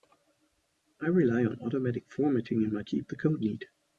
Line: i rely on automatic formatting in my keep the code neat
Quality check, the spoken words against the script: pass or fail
pass